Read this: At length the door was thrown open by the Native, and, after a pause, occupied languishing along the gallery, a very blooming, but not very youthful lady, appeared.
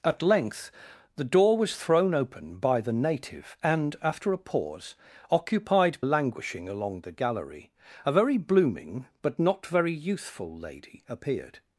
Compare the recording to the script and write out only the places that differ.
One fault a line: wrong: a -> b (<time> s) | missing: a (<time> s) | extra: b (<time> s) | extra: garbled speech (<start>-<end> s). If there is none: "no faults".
no faults